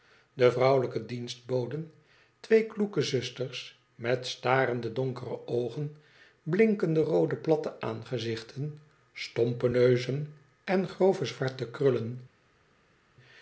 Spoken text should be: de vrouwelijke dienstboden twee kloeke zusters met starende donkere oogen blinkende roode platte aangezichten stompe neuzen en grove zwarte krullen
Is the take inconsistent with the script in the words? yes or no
no